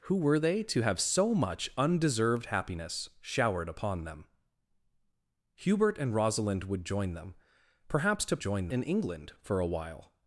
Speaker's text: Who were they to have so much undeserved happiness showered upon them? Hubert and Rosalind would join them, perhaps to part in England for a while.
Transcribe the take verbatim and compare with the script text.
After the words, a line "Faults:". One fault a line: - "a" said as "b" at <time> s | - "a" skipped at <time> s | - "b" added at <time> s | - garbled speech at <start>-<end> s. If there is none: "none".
Who were they to have so much undeserved happiness showered upon them? Hubert and Rosalind would join them, perhaps to join in England for a while.
Faults:
- "part" said as "join" at 8.4 s